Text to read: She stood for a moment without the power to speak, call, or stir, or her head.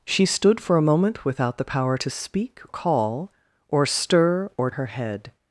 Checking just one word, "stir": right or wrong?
right